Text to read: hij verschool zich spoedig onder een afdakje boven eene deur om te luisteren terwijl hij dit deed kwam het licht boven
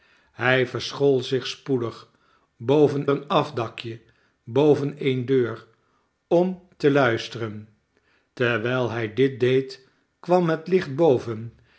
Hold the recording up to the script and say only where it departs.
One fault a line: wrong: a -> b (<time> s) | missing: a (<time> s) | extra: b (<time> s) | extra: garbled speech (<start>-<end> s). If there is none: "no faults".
wrong: onder -> boven (2.6 s)